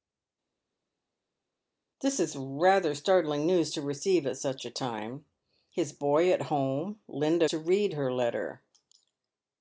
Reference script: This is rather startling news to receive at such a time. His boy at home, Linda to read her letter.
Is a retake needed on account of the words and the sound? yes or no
no